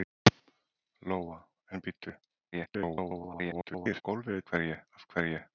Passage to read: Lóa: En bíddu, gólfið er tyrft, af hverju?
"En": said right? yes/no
yes